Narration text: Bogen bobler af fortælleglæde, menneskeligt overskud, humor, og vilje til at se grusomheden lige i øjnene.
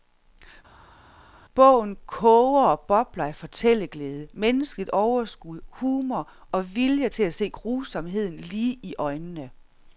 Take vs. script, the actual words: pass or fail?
fail